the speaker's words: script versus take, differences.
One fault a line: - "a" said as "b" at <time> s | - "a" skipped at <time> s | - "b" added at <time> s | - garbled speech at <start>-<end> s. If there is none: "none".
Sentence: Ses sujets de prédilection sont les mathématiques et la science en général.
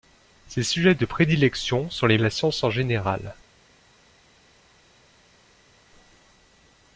- "mathématiques et" skipped at 2.2 s